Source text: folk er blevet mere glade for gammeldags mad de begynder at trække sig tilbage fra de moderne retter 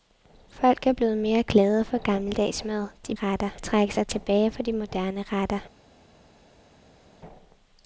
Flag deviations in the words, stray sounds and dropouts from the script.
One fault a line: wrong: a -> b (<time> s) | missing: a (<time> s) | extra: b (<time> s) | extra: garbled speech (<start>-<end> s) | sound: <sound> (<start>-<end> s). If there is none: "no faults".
wrong: begynder -> retter (3.1 s)